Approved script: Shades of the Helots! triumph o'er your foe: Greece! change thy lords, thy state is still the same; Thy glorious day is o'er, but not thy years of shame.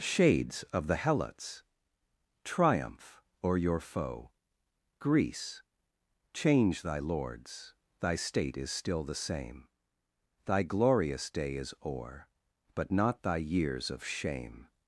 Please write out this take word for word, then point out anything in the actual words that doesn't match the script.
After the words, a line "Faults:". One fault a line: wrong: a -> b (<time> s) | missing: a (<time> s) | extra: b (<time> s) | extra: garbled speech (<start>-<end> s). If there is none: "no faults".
Shades of the Helots! triumph o'er your foe: Greece! change thy lords, thy state is still the same; Thy glorious day is o'er, but not thy years of shame.
Faults:
no faults